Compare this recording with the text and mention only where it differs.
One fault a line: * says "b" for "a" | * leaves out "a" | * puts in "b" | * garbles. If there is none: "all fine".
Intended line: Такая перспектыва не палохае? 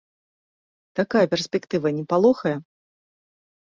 all fine